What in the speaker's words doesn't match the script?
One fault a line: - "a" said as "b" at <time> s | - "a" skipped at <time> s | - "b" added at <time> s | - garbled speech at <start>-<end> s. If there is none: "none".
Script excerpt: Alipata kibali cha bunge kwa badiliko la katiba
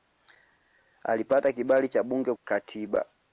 - "kwa badiliko la" skipped at 2.3 s